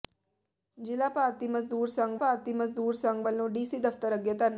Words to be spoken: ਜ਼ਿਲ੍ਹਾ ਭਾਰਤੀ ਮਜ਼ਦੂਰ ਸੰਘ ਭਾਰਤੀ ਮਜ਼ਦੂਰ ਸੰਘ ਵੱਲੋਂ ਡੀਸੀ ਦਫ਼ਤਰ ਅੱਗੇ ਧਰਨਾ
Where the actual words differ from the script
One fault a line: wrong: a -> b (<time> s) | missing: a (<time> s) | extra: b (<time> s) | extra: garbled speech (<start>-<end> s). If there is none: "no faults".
no faults